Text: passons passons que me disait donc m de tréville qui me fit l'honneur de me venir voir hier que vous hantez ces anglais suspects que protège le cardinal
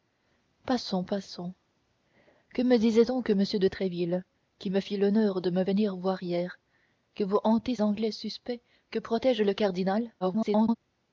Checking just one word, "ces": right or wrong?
wrong